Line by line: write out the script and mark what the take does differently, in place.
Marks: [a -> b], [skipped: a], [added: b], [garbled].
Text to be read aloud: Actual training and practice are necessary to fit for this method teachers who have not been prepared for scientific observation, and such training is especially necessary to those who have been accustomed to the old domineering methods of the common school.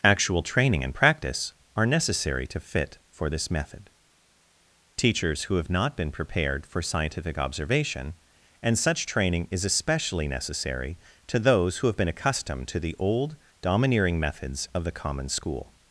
Actual training and practice are necessary to fit for this method teachers who have not been prepared for scientific observation, and such training is especially necessary to those who have been accustomed to the old domineering methods of the common school.